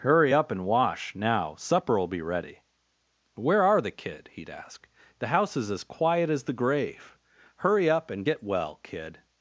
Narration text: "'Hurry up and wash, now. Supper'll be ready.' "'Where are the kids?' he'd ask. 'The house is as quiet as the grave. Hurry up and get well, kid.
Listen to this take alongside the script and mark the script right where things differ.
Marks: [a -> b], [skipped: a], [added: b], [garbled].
"'Hurry up and wash, now. Supper'll be ready.' "'Where are the [kids?' -> kid] he'd ask. 'The house is as quiet as the grave. Hurry up and get well, kid.